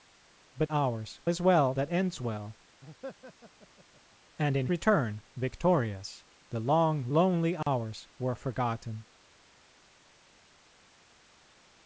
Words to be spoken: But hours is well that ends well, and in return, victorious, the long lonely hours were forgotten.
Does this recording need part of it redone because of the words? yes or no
no